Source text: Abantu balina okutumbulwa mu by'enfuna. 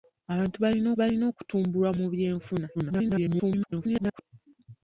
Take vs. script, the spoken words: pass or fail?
fail